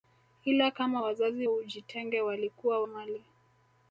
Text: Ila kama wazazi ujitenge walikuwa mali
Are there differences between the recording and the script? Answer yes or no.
no